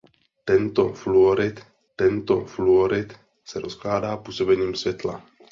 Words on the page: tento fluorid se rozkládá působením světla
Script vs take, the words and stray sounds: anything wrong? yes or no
yes